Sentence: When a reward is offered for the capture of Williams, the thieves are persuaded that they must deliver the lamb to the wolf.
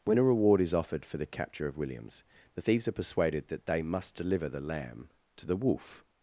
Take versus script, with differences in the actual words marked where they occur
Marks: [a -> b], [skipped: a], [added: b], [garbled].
When a reward is offered for the capture of Williams, the thieves are persuaded that they must deliver the lamb to the wolf.